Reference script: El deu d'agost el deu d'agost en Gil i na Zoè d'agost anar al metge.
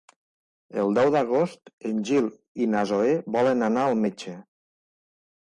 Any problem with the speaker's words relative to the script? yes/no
yes